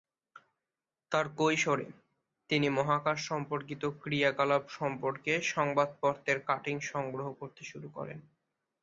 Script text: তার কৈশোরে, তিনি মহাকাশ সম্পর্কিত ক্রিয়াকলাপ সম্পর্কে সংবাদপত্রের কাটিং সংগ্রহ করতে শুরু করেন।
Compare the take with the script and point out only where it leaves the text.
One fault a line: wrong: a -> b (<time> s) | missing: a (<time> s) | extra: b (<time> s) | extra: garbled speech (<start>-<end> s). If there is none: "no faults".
no faults